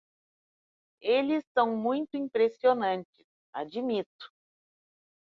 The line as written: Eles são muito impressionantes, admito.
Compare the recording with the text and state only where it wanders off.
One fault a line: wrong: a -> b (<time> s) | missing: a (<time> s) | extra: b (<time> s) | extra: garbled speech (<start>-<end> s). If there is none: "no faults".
no faults